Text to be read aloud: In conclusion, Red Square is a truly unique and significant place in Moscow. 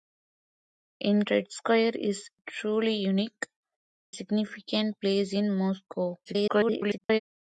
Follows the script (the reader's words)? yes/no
no